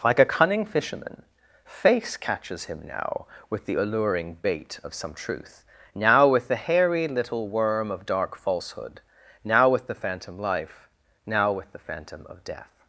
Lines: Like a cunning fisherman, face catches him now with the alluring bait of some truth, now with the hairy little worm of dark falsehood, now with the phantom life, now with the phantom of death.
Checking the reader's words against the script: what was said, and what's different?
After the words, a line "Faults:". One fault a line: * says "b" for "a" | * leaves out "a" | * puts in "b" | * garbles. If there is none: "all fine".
Like a cunning fisherman, face catches him now with the alluring bait of some truth, now with the hairy little worm of dark falsehood, now with the phantom life, now with the phantom of death.
Faults:
all fine